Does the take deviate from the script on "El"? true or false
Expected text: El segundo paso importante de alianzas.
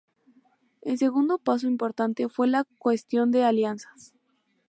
false